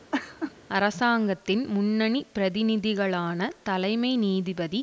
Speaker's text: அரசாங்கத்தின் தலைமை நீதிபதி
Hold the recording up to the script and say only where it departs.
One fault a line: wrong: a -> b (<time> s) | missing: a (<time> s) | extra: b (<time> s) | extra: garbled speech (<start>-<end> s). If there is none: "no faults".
extra: முன்னணி பிரதிநிதிகளான (1.7 s)